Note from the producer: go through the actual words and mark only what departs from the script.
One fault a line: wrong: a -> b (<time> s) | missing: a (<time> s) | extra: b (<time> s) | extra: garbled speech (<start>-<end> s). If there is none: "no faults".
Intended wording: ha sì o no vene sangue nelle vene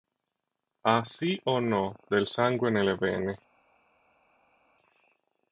wrong: vene -> del (2.1 s)